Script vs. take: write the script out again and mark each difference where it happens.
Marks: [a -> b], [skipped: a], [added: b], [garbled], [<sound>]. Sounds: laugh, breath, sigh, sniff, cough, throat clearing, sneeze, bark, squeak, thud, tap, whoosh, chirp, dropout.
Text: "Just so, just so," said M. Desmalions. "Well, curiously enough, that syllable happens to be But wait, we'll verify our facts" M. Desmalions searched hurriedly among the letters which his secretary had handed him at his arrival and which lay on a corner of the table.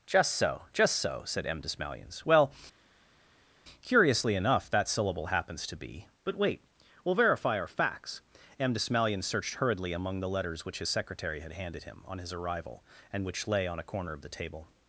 "Just so, just so," said M. Desmalions. "Well, curiously enough, that syllable happens to be But wait, we'll verify our facts" M. Desmalions searched hurriedly among the letters which his secretary had handed him [at -> on] his arrival and which lay on a corner of the table.